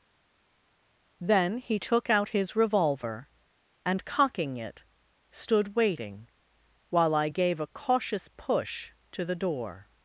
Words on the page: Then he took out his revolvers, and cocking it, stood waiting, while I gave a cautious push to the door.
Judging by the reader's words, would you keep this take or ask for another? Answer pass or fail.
fail